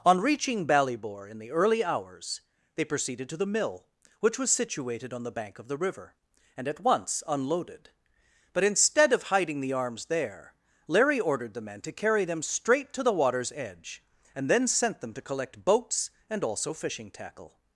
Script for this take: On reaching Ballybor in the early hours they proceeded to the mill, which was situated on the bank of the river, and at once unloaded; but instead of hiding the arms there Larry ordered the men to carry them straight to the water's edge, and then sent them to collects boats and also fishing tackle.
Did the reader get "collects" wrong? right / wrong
wrong